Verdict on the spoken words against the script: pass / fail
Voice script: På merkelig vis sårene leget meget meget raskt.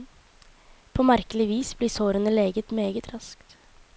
fail